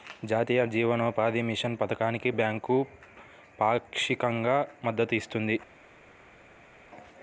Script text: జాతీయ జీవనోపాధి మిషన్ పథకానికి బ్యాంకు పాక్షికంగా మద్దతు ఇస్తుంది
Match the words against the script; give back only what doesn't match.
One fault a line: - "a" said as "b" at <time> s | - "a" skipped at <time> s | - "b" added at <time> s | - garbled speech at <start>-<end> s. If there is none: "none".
none